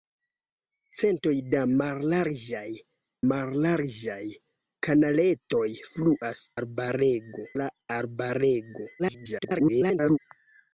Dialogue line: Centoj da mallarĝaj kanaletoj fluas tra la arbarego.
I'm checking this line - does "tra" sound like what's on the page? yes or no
no